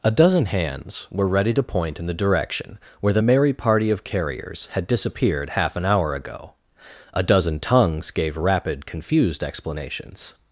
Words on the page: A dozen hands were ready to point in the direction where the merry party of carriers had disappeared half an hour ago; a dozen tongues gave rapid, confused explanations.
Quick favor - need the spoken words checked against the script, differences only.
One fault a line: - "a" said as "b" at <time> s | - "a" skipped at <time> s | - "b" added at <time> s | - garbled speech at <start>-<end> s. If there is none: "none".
none